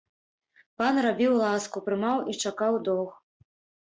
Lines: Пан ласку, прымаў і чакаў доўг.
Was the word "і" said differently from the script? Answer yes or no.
no